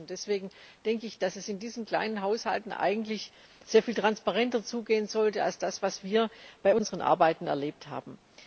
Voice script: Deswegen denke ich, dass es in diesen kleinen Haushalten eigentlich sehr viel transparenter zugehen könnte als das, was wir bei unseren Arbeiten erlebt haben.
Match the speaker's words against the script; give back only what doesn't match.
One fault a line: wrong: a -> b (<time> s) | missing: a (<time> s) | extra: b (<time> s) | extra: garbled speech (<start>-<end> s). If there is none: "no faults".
wrong: könnte -> sollte (5.1 s)